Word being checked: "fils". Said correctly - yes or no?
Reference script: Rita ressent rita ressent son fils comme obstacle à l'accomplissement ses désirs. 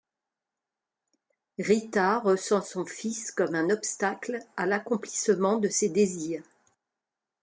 yes